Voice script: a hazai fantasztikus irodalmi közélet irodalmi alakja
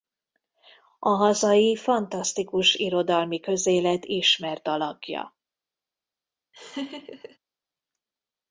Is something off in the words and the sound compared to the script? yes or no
yes